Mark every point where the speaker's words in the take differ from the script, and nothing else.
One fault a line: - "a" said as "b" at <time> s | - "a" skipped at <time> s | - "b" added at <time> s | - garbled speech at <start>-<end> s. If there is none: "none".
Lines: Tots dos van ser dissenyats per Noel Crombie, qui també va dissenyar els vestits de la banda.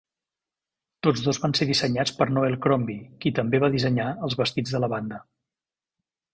none